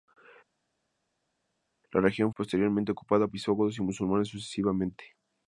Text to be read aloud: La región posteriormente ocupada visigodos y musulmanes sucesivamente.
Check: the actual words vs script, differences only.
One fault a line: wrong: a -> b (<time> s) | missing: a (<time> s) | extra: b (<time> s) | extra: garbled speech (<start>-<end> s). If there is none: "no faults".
no faults